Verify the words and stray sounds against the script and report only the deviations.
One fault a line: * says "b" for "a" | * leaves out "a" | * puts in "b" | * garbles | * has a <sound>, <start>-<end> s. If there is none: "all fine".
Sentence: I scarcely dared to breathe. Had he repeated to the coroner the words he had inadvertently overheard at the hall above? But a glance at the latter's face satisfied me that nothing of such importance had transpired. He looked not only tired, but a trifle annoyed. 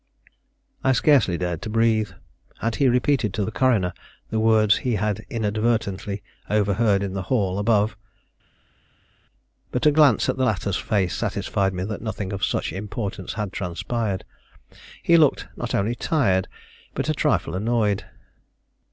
* says "in" for "at"